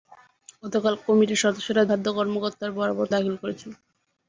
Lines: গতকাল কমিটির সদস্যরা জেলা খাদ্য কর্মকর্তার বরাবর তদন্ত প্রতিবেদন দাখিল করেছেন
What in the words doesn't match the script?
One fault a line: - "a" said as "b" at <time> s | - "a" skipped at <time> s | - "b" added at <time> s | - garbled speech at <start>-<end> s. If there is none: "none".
- "জেলা" skipped at 1.8 s
- "তদন্ত প্রতিবেদন" skipped at 3.1 s